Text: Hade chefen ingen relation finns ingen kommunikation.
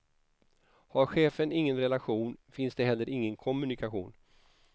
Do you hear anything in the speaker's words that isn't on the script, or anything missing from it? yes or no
yes